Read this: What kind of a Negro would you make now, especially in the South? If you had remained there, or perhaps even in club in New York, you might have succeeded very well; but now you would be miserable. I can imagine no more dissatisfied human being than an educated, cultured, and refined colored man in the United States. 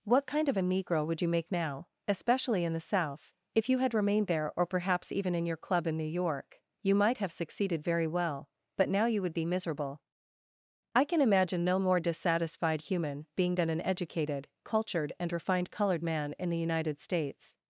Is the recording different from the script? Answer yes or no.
yes